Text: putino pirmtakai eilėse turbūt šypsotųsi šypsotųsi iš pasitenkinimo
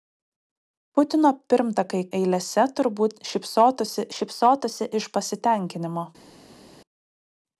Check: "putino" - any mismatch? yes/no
no